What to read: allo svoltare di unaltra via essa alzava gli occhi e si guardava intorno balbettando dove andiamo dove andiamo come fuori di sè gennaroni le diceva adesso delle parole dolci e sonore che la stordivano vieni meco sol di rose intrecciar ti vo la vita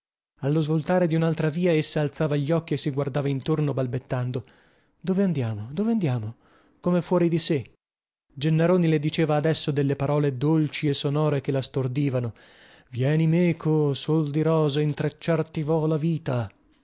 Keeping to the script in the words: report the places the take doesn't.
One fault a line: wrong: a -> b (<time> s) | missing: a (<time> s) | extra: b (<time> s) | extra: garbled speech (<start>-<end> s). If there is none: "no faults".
no faults